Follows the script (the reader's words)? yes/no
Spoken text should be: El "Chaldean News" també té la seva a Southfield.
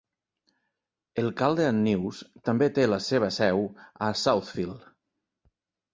no